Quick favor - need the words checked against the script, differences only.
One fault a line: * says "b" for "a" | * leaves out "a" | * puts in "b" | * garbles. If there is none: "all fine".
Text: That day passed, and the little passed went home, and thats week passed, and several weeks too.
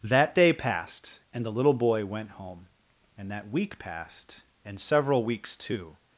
* says "boy" for "passed"
* says "that" for "thats"